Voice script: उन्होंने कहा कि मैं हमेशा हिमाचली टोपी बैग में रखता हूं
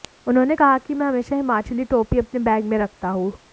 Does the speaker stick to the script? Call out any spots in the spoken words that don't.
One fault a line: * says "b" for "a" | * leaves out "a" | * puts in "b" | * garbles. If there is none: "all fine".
* puts in "अपने"